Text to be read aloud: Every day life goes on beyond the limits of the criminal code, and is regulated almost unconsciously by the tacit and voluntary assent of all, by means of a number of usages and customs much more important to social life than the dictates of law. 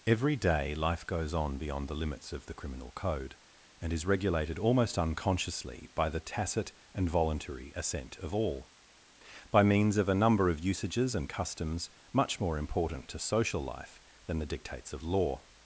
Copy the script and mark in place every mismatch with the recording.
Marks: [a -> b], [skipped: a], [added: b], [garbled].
Every day life goes on beyond the limits of the criminal code, and is regulated almost unconsciously by the tacit and voluntary assent of all, by means of a number of usages and customs much more important to social life than the dictates of law.